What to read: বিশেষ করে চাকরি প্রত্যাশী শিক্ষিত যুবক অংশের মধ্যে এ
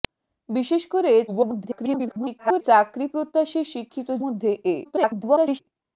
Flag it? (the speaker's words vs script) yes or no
yes